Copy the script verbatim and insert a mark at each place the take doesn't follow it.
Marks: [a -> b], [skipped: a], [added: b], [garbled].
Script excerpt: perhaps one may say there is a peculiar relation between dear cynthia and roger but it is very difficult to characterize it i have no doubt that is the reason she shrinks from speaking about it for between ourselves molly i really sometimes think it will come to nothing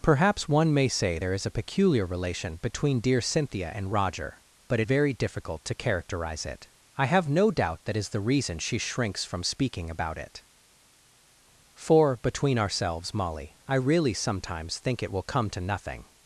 perhaps one may say there is a peculiar relation between dear cynthia and roger but it [skipped: is] very difficult to characterize it i have no doubt that is the reason she shrinks from speaking about it for between ourselves molly i really sometimes think it will come to nothing